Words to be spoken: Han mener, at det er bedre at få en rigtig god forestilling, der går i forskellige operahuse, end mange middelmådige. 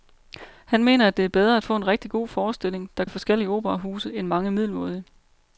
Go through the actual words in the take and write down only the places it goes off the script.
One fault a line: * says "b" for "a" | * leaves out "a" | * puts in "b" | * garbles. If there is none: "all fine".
* leaves out "går"